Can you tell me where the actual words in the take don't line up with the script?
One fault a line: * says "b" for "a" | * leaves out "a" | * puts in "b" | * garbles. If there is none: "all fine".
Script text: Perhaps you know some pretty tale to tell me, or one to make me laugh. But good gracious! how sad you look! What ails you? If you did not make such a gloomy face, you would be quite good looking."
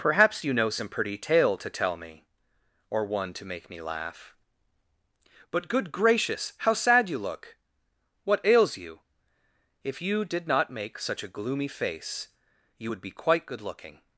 all fine